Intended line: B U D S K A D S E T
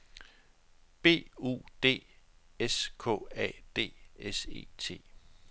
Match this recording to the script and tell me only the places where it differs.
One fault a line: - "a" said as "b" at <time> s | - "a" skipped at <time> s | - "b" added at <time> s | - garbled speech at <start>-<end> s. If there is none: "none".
none